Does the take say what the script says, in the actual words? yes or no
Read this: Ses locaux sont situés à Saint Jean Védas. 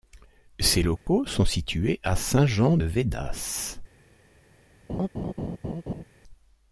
yes